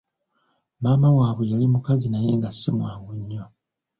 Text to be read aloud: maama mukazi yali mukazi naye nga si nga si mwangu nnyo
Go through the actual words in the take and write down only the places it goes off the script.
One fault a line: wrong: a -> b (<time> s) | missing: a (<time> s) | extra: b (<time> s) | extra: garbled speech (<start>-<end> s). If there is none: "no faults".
wrong: mukazi -> waabwe (1.2 s)
missing: nga si (2.7 s)